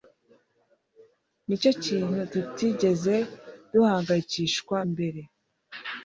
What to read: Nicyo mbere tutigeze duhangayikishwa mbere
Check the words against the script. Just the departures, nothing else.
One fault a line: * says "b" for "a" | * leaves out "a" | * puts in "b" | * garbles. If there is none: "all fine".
* says "kintu" for "mbere"